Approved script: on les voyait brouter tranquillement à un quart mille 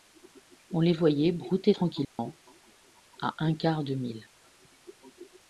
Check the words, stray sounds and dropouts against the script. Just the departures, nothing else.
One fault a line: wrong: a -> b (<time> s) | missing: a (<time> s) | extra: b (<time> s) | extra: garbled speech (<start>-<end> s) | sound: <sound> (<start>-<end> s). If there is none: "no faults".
sound: dropout (2.0-2.2 s)
extra: de (3.8 s)